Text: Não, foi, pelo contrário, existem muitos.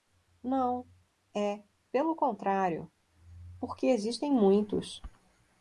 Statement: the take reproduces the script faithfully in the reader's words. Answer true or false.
false